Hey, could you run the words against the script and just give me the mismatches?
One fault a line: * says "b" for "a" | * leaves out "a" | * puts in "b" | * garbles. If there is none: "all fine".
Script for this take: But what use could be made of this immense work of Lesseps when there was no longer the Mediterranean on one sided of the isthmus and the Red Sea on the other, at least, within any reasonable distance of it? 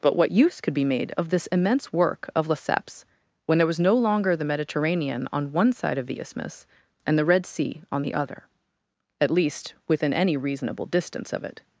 * says "side" for "sided"